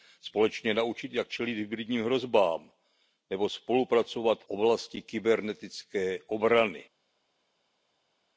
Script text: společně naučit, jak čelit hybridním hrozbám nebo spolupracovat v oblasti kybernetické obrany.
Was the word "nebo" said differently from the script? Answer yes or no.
no